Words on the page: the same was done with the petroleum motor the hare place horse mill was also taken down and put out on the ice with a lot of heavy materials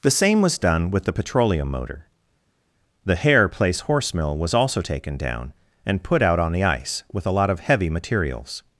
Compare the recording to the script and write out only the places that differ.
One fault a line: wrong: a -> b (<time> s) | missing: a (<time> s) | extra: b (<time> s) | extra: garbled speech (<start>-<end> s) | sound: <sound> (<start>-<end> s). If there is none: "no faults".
no faults